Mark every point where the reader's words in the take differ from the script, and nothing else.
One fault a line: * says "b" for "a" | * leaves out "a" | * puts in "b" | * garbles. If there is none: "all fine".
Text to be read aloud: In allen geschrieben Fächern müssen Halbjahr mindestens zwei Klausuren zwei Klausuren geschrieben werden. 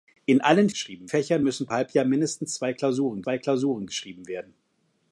all fine